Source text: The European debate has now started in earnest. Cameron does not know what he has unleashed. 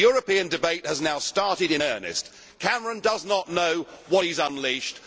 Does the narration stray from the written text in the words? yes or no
no